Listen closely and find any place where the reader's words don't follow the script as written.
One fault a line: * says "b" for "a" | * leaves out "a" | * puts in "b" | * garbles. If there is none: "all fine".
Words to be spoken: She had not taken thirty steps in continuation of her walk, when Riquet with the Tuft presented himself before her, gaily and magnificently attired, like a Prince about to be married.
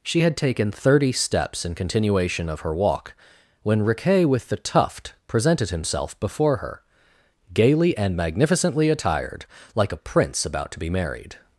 * leaves out "not"